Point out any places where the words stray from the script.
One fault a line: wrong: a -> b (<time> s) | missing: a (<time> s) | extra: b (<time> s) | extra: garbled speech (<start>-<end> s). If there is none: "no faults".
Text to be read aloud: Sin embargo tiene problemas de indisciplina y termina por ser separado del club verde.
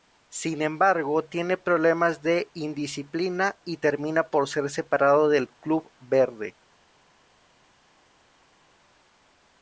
no faults